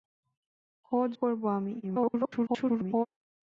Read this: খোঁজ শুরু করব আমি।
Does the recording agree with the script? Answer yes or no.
no